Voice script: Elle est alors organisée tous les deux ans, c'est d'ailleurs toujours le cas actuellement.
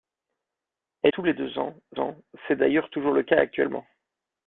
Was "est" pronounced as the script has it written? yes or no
no